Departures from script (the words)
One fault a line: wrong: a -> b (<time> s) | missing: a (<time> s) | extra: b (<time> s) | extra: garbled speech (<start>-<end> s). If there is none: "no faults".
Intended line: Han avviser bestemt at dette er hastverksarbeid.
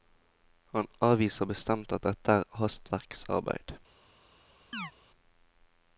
no faults